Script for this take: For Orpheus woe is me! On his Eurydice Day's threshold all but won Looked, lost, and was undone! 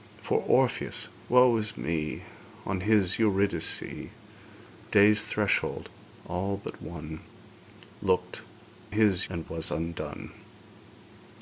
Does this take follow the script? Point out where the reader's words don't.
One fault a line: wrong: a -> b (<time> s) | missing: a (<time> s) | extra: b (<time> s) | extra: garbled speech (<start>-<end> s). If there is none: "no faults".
wrong: lost -> his (8.9 s)